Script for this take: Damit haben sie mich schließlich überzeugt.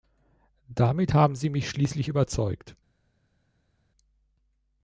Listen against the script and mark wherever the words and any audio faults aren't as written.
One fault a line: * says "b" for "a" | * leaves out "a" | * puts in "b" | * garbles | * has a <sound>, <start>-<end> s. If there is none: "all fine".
all fine